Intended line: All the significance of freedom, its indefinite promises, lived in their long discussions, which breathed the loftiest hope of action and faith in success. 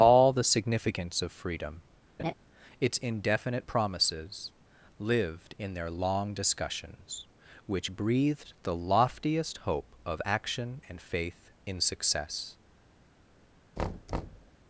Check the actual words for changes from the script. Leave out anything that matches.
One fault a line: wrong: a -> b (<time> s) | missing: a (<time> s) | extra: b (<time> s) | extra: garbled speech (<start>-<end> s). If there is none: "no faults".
no faults